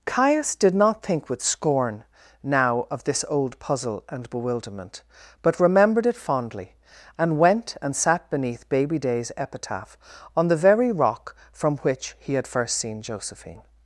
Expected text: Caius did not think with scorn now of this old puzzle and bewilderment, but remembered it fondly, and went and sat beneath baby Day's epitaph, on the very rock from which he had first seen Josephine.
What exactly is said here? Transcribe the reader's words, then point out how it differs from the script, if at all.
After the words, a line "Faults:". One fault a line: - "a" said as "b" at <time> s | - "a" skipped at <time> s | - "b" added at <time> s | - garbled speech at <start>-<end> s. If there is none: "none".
Caius did not think with scorn now of this old puzzle and bewilderment, but remembered it fondly, and went and sat beneath baby Day's epitaph, on the very rock from which he had first seen Josephine.
Faults:
none